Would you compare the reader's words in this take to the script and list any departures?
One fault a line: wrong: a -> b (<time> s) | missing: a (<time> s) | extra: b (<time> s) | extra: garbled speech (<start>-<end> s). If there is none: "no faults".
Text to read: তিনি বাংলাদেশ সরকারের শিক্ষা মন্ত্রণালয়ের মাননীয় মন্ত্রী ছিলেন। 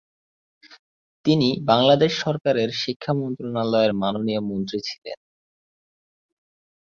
no faults